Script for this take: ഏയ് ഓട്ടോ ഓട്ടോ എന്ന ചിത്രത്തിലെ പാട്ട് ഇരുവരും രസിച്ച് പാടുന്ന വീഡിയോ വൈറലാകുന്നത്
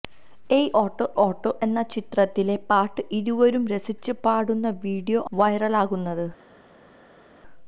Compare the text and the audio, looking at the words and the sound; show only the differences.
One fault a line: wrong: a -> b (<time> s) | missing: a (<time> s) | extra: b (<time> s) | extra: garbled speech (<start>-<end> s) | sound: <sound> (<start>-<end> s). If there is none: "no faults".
no faults